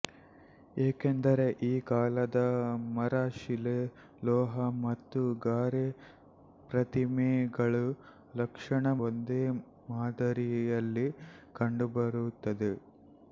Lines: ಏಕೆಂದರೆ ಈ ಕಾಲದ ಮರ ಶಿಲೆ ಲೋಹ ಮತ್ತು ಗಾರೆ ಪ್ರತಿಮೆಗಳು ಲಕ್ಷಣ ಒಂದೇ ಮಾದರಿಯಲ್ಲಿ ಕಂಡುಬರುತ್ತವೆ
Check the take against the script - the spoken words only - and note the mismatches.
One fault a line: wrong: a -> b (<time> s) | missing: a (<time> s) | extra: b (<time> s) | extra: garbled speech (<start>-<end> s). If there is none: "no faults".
no faults